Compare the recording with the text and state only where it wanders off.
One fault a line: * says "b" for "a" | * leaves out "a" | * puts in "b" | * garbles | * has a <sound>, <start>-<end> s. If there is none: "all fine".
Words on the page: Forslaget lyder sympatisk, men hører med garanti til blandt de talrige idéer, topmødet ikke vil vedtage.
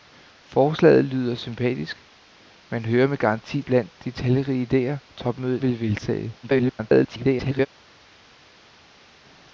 * leaves out "til"
* leaves out "ikke"
* garbles